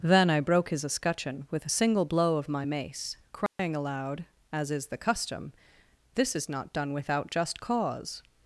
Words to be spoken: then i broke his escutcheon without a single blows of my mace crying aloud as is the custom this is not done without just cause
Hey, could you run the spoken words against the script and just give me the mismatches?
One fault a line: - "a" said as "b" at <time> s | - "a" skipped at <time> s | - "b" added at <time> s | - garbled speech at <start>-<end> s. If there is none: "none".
- "without" said as "with" at 1.5 s
- "blows" said as "blow" at 2.0 s